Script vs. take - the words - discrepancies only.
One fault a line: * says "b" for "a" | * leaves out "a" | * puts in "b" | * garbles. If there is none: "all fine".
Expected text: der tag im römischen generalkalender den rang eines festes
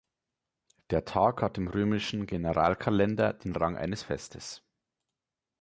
* puts in "hat"